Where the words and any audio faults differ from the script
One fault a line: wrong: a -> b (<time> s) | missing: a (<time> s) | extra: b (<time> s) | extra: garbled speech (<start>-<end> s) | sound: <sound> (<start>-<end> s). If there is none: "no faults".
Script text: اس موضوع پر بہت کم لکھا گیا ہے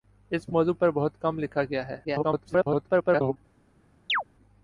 extra: garbled speech (2.0-3.4 s)
sound: chirp (4.1-4.2 s)